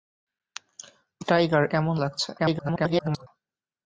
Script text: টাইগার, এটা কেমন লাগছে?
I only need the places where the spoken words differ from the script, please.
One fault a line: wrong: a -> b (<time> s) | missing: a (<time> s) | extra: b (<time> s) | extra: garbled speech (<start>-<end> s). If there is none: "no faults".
missing: এটা (1.6 s)
extra: garbled speech (2.4-3.3 s)